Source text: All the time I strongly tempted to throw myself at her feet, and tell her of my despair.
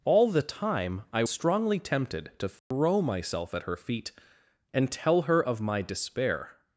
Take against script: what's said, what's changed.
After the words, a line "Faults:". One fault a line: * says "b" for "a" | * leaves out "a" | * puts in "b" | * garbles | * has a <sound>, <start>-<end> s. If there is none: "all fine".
All the time I strongly tempted to throw myself at her feet, and tell her of my despair.
Faults:
* has a dropout, 2.6-2.7 s